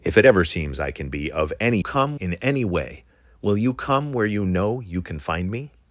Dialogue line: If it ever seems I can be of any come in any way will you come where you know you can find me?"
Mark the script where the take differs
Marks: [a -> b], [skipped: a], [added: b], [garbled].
If it ever seems I can be of any come in any way will you come where you know you can find me?"